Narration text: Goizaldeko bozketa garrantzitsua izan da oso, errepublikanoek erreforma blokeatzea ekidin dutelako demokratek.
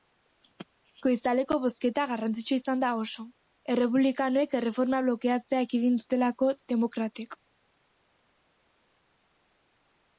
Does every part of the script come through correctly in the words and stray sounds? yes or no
yes